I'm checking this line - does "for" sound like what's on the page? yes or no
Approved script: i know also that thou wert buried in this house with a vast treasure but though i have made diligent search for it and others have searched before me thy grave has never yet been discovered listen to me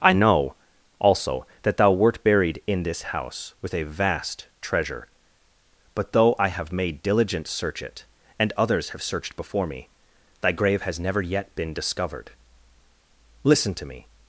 no